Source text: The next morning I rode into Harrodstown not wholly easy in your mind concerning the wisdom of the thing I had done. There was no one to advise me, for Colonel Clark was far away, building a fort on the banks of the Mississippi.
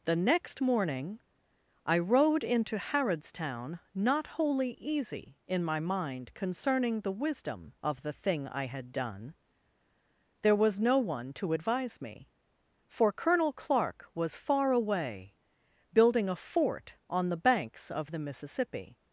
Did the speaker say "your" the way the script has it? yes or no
no